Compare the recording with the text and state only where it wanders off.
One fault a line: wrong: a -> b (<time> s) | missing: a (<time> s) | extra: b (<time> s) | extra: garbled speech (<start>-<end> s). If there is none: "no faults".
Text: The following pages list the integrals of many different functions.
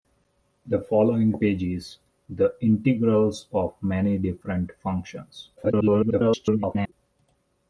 missing: list (2.0 s)
extra: garbled speech (5.6-6.9 s)